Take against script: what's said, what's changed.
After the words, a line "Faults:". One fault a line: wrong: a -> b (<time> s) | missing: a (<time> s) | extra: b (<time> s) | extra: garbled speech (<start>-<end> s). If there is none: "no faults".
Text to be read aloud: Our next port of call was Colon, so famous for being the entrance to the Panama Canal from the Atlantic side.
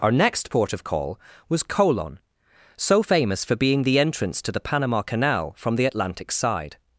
Our next port of call was Colon, so famous for being the entrance to the Panama Canal from the Atlantic side.
Faults:
no faults